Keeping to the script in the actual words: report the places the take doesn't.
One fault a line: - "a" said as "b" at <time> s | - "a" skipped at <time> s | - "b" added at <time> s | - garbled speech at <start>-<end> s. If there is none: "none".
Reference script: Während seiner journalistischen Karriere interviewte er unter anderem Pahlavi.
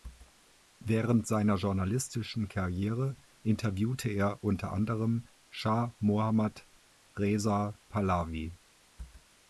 - "Schah Mohammad Reza" added at 5.5 s